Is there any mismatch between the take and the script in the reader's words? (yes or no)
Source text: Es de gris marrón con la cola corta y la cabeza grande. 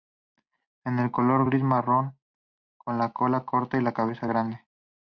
yes